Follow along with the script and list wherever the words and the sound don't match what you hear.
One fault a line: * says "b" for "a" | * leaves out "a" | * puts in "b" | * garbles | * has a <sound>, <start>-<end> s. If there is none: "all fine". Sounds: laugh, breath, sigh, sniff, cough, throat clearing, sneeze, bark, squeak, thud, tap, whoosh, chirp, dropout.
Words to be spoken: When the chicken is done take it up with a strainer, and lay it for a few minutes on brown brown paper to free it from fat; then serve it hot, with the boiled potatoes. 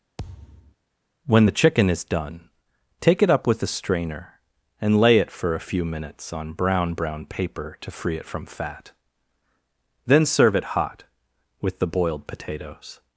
* has a thud, 0.2-0.8 s